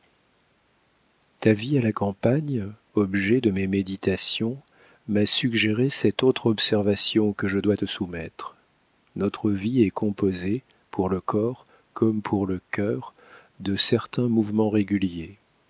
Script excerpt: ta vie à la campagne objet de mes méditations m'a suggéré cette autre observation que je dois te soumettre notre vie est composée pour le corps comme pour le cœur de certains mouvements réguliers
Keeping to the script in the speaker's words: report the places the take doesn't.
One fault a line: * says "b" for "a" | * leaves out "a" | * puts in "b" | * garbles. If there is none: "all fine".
all fine